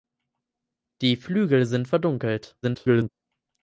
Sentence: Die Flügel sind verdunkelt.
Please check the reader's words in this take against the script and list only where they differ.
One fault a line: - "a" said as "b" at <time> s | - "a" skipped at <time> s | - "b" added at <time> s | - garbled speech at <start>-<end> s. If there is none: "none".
- garbled speech at 2.6-3.1 s